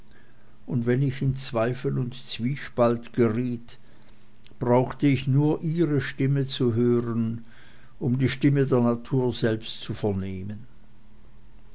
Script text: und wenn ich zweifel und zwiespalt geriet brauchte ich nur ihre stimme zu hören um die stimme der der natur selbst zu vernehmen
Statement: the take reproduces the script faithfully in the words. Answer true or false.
false